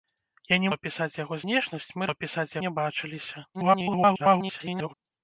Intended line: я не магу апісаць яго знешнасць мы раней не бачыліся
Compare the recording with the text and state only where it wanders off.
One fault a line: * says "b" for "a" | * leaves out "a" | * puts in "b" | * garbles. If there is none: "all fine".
* leaves out "магу"
* says "апісаць" for "раней"
* garbles